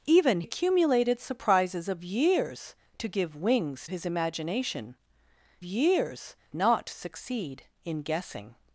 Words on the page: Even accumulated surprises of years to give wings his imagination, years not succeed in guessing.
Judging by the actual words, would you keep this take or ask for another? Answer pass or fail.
pass